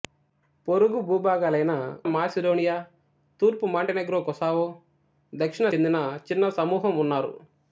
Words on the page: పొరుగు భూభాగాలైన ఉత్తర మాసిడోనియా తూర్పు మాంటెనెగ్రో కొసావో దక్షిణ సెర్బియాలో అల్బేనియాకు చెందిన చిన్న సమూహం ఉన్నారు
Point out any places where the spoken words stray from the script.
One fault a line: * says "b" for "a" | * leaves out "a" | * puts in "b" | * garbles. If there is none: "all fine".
* leaves out "ఉత్తర"
* leaves out "సెర్బియాలో అల్బేనియాకు"